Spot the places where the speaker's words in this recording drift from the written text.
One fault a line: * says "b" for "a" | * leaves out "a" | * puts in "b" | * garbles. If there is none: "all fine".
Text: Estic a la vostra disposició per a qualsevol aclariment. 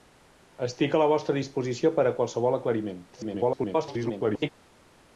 * garbles